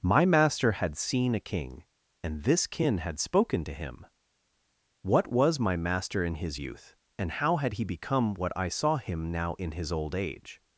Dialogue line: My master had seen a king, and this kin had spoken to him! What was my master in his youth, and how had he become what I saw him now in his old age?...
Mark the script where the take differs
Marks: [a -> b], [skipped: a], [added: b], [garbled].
My master had seen a king, and this kin had spoken to him! What was my master in his youth, and how had he become what I saw him now in his old age?...